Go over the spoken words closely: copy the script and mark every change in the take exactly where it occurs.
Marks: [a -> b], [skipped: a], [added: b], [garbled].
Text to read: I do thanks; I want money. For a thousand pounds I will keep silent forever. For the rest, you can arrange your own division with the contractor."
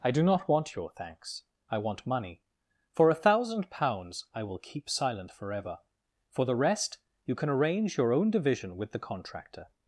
I do [added: not want your] thanks; I want money. For a thousand pounds I will keep silent forever. For the rest, you can arrange your own division with the contractor."